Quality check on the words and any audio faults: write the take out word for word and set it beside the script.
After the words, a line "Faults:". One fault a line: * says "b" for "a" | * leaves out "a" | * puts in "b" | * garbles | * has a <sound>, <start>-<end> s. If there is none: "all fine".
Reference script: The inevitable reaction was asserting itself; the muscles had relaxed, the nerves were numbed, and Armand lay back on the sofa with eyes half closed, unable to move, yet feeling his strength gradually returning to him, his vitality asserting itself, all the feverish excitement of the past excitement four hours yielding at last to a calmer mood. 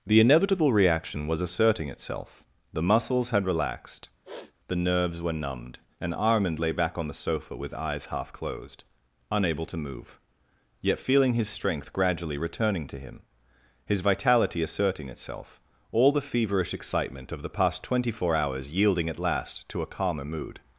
The inevitable reaction was asserting itself; the muscles had relaxed, the nerves were numbed, and Armand lay back on the sofa with eyes half closed, unable to move, yet feeling his strength gradually returning to him, his vitality asserting itself, all the feverish excitement of the past twenty four hours yielding at last to a calmer mood.
Faults:
* has a sniff, 4.2-4.5 s
* says "twenty" for "excitement"